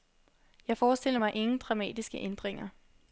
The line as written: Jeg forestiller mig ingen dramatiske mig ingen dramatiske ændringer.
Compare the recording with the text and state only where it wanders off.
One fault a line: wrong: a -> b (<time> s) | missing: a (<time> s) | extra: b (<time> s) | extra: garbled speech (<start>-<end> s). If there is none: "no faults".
missing: mig ingen dramatiske (2.2 s)